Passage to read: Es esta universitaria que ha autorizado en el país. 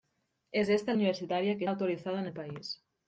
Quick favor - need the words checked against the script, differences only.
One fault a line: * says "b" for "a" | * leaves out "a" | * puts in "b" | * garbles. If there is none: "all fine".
all fine